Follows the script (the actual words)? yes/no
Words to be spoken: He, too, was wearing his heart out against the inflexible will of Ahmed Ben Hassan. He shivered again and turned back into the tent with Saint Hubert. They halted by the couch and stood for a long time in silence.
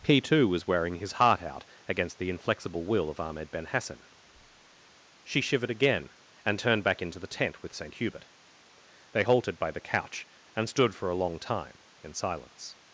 no